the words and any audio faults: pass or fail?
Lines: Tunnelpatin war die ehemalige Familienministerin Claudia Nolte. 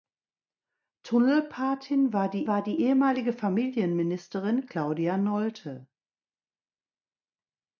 fail